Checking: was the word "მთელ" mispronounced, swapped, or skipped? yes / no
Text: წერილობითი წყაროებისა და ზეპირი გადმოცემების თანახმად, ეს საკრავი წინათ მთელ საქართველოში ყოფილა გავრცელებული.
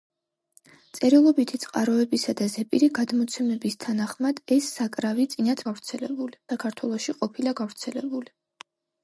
yes